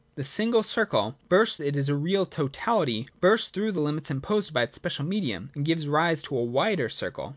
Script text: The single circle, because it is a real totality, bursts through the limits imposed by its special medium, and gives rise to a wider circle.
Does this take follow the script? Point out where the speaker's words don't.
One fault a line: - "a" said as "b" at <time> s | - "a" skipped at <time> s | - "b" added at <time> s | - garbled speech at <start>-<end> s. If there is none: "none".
- "because" said as "bursts" at 1.3 s